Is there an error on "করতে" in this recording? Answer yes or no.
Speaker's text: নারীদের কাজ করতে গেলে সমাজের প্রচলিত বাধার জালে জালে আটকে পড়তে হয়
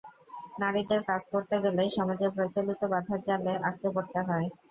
no